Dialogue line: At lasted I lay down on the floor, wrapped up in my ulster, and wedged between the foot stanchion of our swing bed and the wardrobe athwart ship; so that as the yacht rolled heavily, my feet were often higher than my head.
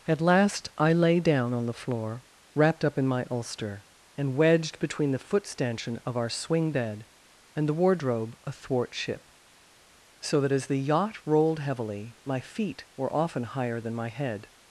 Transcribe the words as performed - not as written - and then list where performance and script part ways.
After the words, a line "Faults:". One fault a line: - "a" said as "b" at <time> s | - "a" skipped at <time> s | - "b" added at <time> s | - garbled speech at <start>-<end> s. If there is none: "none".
At last I lay down on the floor, wrapped up in my ulster, and wedged between the foot stanchion of our swing bed and the wardrobe athwart ship; so that as the yacht rolled heavily, my feet were often higher than my head.
Faults:
- "lasted" said as "last" at 0.2 s